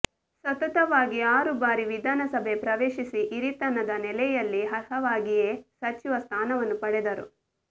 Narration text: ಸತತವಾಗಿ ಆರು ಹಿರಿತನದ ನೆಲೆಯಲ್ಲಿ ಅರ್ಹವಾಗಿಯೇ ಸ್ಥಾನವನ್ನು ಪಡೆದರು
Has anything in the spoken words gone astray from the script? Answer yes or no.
yes